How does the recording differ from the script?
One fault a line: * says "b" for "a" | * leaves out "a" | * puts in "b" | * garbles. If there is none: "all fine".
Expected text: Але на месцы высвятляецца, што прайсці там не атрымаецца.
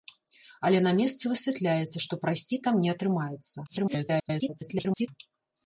* garbles